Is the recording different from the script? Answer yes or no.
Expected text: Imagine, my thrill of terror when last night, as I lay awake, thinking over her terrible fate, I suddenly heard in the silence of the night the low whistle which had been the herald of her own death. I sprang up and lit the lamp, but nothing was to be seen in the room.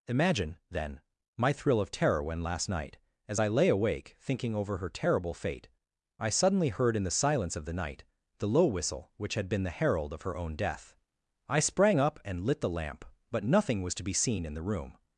yes